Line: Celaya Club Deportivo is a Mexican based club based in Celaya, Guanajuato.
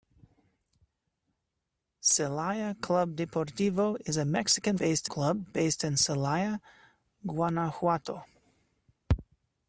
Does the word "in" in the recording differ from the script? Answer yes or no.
no